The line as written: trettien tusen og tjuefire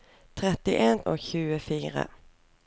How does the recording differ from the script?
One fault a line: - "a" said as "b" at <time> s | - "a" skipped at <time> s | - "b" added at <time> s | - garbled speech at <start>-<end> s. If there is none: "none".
- "tusen" skipped at 1.0 s